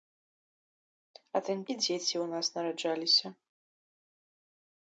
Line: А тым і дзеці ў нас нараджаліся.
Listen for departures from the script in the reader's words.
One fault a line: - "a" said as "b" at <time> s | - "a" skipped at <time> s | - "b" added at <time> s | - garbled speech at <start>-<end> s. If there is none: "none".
none